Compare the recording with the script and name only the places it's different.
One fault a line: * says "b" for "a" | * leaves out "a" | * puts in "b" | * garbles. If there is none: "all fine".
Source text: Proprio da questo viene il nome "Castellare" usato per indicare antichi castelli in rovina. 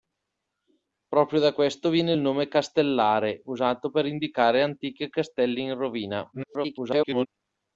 * garbles